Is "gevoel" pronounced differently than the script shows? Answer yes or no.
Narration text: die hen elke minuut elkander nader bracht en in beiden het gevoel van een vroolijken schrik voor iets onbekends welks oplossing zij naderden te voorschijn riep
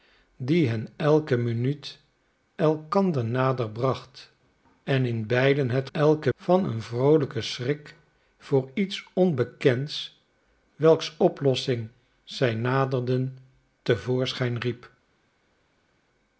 yes